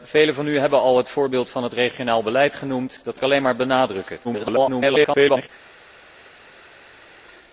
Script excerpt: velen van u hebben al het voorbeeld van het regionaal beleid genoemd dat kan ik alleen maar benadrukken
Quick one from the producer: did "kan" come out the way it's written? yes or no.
no